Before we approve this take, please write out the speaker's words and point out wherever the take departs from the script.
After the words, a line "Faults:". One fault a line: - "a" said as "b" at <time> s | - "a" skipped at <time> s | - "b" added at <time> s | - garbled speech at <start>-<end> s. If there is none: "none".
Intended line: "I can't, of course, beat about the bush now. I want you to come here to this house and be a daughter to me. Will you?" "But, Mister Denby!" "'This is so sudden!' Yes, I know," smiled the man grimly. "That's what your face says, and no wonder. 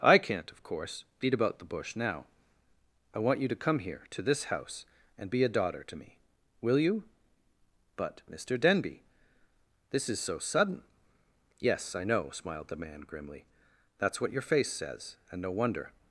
"I can't, of course, beat about the bush now. I want you to come here to this house and be a daughter to me. Will you?" "But, Mister Denby!" "'This is so sudden!' Yes, I know," smiled the man grimly. "That's what your face says, and no wonder.
Faults:
none